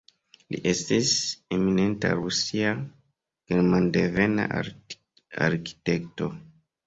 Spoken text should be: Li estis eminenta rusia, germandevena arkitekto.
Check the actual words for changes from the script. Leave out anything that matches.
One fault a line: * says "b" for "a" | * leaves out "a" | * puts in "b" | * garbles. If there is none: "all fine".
all fine